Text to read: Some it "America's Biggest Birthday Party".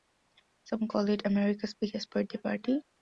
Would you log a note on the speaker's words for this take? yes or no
yes